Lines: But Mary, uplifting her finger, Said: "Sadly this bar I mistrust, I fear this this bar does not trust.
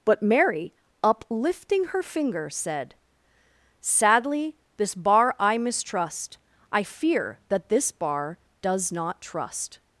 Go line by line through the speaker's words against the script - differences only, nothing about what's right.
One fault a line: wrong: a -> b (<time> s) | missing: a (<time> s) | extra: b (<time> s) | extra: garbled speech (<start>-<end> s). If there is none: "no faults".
wrong: this -> that (7.5 s)